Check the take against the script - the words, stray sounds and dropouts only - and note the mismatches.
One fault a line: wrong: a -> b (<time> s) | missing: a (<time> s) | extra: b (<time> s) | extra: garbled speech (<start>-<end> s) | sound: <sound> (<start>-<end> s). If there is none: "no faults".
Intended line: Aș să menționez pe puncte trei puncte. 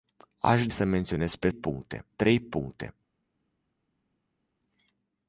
no faults